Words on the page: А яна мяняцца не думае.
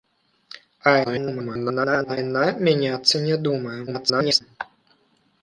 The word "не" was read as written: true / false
true